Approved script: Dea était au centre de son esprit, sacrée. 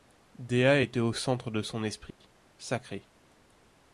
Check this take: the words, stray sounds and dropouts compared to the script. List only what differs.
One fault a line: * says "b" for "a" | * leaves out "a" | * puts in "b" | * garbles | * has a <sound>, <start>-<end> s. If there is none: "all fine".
* has a dropout, 2.1-2.2 s